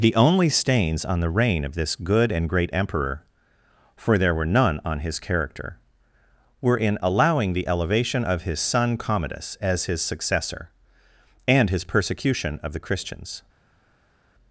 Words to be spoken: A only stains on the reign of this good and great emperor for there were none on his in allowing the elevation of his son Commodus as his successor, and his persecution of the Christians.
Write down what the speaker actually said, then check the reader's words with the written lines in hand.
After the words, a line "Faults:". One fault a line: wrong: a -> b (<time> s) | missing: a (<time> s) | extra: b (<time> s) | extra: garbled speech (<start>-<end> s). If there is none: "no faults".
The only stains on the reign of this good and great emperor for there were none on his character were in allowing the elevation of his son Commodus as his successor, and his persecution of the Christians.
Faults:
wrong: A -> The (0.0 s)
extra: character were (5.2 s)